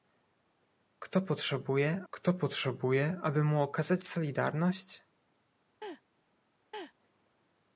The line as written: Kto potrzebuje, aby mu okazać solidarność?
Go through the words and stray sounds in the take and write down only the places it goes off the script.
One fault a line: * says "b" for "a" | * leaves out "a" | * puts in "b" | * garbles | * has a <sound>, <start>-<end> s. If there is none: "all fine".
* puts in "kto potrzebuje"
* has a laugh, 5.8-6.0 s
* has a laugh, 6.7-6.9 s